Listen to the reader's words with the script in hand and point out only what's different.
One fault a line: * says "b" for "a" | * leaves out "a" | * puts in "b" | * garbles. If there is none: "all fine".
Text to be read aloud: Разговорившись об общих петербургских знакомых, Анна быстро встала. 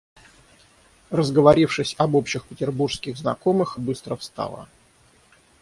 * leaves out "Анна"